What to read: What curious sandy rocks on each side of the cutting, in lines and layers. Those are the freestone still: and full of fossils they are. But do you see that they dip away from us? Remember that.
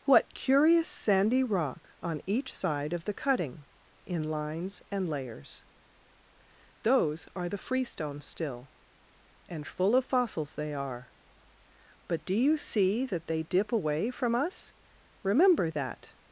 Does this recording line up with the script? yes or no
no